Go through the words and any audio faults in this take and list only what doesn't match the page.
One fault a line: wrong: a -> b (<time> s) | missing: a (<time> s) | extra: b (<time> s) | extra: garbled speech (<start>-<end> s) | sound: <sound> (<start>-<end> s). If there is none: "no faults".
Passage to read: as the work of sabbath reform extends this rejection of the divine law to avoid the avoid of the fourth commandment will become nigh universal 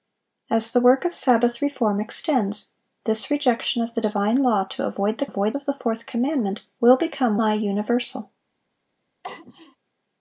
sound: sneeze (9.2-9.8 s)